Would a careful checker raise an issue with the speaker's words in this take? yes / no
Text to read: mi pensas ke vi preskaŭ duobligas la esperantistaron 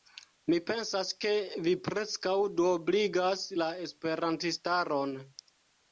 no